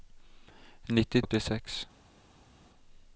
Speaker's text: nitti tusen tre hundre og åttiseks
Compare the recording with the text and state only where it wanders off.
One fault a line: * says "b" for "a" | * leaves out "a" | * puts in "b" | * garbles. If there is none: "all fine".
* leaves out "tusen tre hundre"